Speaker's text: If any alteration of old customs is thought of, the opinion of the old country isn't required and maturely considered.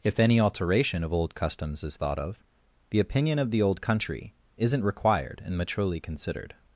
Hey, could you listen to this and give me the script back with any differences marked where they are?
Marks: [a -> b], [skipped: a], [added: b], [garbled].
If any alteration of old customs is thought of, the opinion of the old country isn't required and maturely considered.